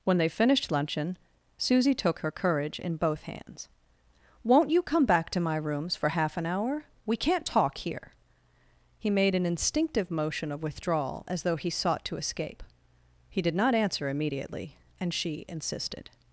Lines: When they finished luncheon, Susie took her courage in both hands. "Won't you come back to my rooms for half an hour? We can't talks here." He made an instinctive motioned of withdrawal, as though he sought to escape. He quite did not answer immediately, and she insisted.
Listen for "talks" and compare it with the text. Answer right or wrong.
wrong